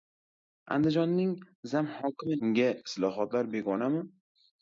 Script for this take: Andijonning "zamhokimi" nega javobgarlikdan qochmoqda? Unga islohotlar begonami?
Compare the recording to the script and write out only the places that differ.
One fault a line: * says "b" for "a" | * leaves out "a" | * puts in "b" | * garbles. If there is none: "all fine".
* leaves out "nega javobgarlikdan qochmoqda"